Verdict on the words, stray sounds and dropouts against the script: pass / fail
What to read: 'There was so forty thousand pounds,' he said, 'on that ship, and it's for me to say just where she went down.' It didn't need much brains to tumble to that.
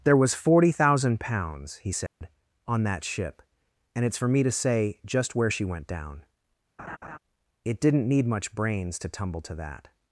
fail